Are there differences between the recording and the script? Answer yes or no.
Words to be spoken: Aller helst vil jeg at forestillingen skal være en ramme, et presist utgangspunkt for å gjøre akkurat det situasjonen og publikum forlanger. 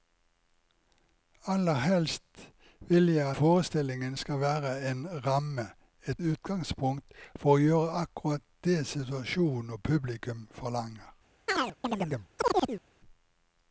yes